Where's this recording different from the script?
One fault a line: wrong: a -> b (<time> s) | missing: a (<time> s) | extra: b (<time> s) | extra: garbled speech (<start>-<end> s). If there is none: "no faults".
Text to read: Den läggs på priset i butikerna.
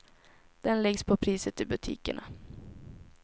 no faults